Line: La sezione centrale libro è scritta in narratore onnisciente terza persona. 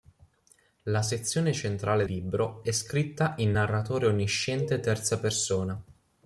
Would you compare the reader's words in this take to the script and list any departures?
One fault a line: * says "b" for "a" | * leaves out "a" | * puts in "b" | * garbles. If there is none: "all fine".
all fine